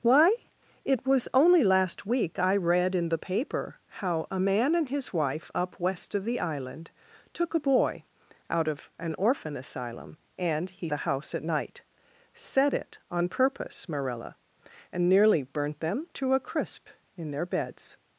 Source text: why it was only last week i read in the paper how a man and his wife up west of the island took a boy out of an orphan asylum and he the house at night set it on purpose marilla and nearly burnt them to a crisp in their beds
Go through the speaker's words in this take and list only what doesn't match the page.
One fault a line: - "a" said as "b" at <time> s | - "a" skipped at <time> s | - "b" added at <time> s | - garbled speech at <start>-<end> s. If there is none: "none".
none